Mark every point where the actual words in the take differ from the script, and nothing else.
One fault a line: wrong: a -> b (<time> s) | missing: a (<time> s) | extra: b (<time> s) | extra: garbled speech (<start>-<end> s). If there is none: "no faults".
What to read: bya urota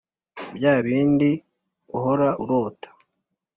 extra: bindi uhora (0.8 s)